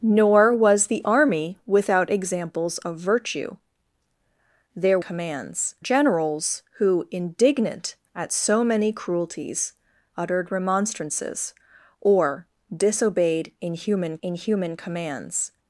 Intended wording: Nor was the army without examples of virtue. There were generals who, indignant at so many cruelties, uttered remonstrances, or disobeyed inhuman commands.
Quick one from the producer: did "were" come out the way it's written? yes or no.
no